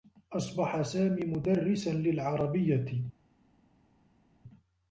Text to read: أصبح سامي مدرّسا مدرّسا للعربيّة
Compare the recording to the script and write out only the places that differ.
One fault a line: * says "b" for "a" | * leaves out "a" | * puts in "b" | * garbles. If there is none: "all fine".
* leaves out "مدرّسا"